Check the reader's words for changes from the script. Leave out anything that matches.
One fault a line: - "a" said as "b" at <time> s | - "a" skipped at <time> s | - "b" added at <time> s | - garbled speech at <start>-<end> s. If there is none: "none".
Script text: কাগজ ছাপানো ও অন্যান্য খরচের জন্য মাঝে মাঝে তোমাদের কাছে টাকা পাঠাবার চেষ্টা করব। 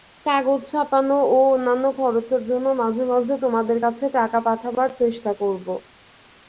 none